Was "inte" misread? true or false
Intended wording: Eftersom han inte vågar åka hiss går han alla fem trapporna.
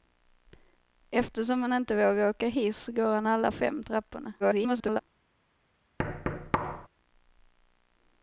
false